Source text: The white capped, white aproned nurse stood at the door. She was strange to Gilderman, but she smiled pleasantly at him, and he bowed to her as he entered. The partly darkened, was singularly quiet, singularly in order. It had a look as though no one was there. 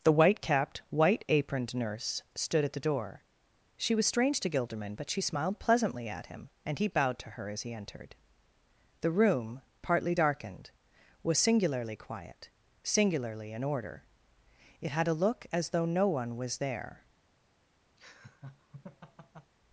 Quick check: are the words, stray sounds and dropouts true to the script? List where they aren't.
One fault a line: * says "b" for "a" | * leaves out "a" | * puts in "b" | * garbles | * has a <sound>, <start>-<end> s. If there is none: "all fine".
* puts in "room"
* has a laugh, 18.0-19.5 s